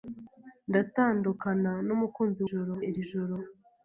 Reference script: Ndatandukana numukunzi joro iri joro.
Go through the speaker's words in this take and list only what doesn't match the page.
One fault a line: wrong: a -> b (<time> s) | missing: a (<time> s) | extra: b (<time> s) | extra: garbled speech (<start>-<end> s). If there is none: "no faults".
no faults